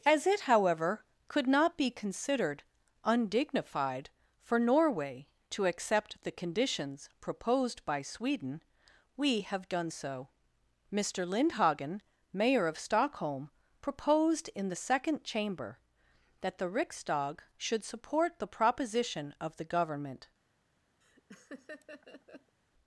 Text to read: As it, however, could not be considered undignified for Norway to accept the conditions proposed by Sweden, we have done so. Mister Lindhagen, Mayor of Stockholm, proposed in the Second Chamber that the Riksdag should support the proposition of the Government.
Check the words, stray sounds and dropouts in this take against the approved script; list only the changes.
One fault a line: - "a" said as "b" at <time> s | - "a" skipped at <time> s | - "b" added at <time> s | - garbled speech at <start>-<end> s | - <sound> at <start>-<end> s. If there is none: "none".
- laugh at 21.0-22.6 s